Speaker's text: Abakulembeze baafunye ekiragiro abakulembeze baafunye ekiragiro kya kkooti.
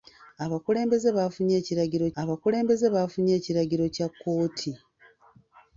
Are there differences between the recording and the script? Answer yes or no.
no